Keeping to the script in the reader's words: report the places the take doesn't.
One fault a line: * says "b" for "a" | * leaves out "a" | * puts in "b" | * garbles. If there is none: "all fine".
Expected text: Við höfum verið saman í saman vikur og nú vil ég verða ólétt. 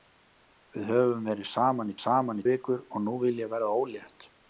all fine